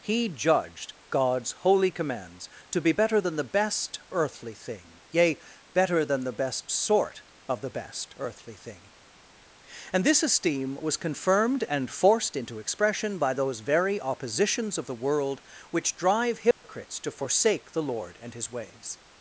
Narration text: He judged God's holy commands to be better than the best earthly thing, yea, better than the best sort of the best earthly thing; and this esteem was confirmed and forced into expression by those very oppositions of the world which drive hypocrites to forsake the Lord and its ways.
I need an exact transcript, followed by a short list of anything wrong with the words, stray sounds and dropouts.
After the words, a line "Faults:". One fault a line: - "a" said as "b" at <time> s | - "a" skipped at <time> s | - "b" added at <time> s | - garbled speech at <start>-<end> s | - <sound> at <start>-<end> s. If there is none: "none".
He judged God's holy commands to be better than the best earthly thing, yea, better than the best sort of the best earthly thing; and this esteem was confirmed and forced into expression by those very oppositions of the world which drive hypocrites to forsake the Lord and his ways.
Faults:
- dropout at 16.5-16.6 s
- "its" said as "his" at 18.3 s